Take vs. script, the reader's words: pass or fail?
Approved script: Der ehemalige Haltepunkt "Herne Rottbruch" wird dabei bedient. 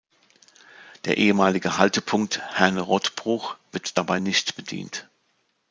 fail